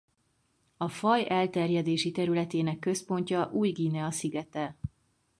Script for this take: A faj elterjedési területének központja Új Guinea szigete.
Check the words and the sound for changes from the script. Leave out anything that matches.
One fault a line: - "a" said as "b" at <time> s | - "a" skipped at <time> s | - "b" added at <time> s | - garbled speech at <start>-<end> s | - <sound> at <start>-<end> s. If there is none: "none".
none